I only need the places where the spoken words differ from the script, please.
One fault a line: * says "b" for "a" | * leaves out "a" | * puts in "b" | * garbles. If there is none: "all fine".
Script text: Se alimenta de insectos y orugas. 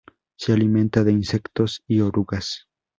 all fine